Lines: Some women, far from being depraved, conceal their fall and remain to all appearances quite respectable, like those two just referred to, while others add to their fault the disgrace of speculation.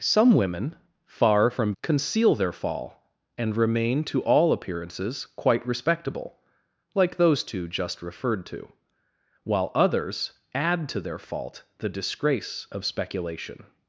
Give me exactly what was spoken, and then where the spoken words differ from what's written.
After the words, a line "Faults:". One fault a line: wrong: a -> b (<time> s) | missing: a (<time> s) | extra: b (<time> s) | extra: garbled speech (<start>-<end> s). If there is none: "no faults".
Some women, far from conceal their fall and remain to all appearances quite respectable, like those two just referred to, while others add to their fault the disgrace of speculation.
Faults:
missing: being depraved (1.7 s)